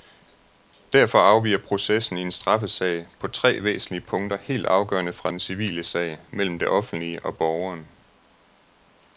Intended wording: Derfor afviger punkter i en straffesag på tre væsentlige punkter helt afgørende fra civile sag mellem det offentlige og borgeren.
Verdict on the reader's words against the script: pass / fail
fail